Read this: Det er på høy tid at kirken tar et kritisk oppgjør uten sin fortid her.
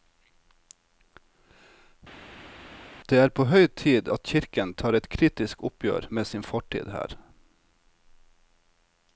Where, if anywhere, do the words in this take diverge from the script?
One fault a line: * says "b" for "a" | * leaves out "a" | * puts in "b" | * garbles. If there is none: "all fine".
* says "med" for "uten"